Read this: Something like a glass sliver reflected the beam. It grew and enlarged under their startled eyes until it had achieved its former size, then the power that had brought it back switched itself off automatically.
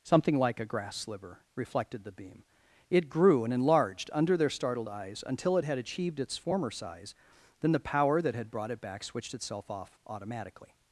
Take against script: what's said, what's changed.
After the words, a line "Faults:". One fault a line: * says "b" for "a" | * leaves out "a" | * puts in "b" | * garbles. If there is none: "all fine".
Something like a grass sliver reflected the beam. It grew and enlarged under their startled eyes until it had achieved its former size, then the power that had brought it back switched itself off automatically.
Faults:
* says "grass" for "glass"